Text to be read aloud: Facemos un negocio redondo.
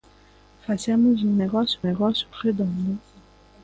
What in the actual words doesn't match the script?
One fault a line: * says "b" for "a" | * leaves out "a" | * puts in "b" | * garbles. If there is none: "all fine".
* puts in "negocio"